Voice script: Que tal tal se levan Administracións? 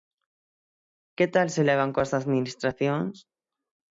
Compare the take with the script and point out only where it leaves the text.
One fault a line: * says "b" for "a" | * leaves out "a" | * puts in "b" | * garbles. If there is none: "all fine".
* leaves out "tal"
* puts in "coas"